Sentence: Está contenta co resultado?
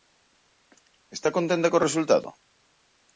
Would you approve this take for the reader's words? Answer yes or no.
yes